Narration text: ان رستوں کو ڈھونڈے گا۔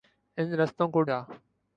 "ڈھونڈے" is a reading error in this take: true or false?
true